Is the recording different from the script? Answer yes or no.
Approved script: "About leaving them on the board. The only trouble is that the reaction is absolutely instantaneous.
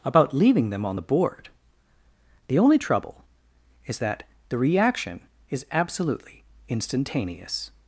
no